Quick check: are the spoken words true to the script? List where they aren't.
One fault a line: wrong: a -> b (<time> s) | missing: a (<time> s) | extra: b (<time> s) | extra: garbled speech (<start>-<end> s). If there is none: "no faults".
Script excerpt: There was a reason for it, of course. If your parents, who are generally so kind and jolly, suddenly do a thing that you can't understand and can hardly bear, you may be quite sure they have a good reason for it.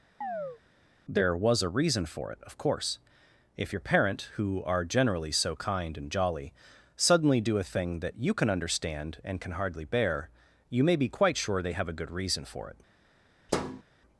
wrong: parents -> parent (3.8 s)
wrong: can't -> can (8.3 s)